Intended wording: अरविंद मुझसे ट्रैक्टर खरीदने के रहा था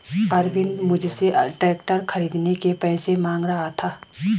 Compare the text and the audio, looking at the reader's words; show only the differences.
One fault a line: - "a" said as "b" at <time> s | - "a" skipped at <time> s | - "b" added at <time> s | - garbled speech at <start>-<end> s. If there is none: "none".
- "पैसे मांग" added at 2.8 s